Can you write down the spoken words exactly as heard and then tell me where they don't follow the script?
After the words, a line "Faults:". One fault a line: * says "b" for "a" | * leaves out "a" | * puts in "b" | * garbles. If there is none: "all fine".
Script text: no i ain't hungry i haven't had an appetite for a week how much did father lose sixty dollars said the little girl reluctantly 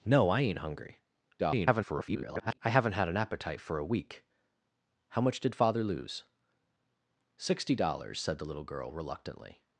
no i ain't hungry [garbled] i haven't had an appetite for a week how much did father lose sixty dollars said the little girl reluctantly
Faults:
* garbles